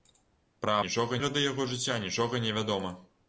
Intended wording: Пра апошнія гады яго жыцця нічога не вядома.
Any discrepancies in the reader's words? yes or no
yes